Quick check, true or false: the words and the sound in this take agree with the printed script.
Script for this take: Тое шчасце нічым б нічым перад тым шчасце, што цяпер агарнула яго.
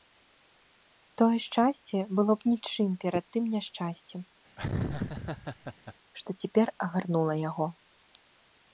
false